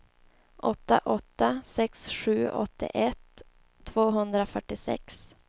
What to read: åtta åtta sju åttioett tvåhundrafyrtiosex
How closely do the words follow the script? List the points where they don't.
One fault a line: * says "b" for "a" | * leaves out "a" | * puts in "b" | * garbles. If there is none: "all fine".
* puts in "sex"